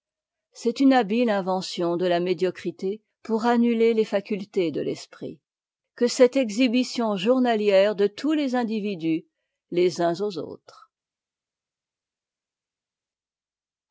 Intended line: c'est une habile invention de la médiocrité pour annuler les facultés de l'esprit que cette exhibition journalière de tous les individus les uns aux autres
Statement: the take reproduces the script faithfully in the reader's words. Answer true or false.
true